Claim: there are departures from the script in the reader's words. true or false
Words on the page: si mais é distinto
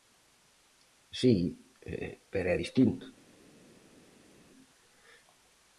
true